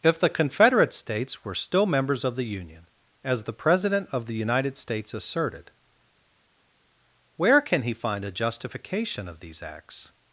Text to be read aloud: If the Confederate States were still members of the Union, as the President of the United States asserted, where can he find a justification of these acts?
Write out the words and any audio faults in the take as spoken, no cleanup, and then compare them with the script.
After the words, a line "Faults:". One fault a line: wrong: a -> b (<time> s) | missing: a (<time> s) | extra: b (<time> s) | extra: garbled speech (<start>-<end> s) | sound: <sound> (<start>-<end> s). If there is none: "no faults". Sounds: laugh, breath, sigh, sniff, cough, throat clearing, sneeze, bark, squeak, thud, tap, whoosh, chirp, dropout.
If the Confederate States were still members of the Union, as the President of the United States asserted, where can he find a justification of these acts?
Faults:
no faults